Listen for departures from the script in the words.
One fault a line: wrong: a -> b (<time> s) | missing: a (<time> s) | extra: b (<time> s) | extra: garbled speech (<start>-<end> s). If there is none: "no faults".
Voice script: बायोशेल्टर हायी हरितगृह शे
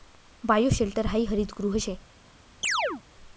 no faults